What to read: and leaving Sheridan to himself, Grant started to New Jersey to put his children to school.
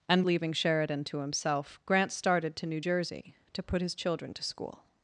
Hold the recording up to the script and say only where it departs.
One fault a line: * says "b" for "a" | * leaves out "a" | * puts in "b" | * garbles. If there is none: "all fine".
all fine